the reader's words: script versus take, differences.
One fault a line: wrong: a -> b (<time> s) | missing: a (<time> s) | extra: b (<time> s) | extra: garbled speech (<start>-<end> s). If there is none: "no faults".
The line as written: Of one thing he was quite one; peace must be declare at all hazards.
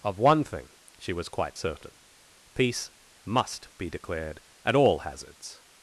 wrong: he -> she (1.0 s)
wrong: one -> certain (1.6 s)
wrong: declare -> declared (3.9 s)